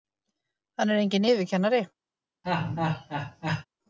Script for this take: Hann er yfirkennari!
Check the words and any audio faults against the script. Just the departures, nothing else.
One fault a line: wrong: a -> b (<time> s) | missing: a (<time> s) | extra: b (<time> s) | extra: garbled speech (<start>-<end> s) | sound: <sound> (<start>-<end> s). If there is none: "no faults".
extra: enginn (1.0 s)
sound: laugh (2.4-3.7 s)